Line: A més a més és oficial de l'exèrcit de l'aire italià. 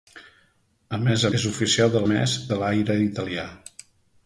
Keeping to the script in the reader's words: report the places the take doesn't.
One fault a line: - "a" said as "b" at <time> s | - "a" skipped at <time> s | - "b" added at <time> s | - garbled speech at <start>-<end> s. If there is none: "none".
- "més" skipped at 1.3 s
- "l'exèrcit" said as "més" at 2.1 s